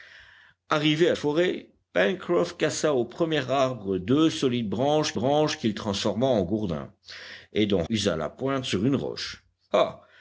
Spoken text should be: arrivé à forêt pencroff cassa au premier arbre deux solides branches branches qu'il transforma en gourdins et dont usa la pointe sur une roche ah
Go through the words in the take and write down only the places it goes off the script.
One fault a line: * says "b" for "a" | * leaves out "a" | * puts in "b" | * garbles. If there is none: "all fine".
all fine